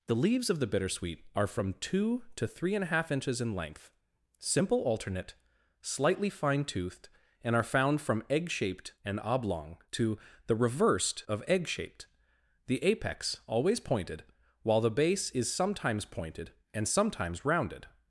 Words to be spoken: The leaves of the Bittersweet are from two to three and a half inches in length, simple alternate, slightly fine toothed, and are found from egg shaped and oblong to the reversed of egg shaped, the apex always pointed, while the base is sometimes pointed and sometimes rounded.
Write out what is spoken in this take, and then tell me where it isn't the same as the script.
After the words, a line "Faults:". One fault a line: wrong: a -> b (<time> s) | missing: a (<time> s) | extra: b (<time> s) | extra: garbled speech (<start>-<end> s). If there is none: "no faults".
The leaves of the Bittersweet are from two to three and a half inches in length, simple alternate, slightly fine toothed, and are found from egg shaped and oblong to the reversed of egg shaped, the apex always pointed, while the base is sometimes pointed and sometimes rounded.
Faults:
no faults